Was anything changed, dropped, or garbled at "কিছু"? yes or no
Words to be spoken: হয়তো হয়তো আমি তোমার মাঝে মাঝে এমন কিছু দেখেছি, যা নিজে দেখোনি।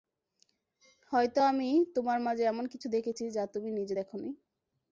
no